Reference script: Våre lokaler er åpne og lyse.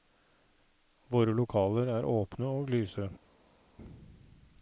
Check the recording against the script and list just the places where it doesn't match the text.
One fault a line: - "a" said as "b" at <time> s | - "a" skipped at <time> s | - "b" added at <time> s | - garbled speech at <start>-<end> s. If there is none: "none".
none